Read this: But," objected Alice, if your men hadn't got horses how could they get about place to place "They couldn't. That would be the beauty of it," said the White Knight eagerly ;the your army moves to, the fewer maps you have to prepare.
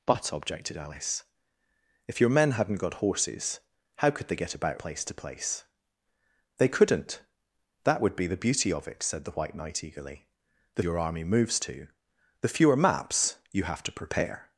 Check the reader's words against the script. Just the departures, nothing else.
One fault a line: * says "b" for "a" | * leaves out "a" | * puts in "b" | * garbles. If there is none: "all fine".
all fine